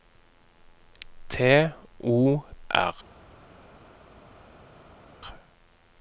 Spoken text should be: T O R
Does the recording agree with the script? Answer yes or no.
yes